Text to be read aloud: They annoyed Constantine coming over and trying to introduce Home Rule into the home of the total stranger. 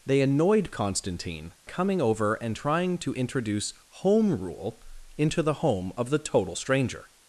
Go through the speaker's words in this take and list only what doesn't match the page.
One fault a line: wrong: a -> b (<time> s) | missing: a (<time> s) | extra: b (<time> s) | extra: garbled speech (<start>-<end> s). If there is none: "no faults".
no faults